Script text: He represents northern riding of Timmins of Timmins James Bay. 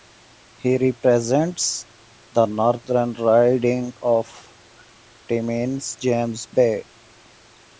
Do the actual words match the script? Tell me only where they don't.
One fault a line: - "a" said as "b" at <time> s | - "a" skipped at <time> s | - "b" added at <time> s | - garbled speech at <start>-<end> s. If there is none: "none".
- "the" added at 2.3 s
- "of Timmins" skipped at 6.0 s